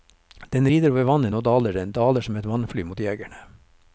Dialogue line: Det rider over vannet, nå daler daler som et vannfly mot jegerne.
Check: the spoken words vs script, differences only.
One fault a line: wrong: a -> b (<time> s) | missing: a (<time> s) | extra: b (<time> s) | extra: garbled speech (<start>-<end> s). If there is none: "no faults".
wrong: Det -> Den (0.5 s)
extra: den (1.8 s)